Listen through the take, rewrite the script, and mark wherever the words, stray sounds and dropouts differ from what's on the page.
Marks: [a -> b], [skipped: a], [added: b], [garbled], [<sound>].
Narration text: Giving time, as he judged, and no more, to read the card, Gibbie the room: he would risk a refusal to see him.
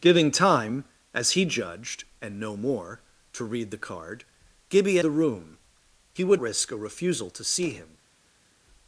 Giving time, as he judged, and no more, to read the card, Gibbie the room: he would risk a refusal to see him.